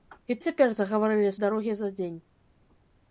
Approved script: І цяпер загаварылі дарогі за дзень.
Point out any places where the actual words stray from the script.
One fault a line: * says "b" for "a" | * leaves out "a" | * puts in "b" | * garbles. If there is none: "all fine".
all fine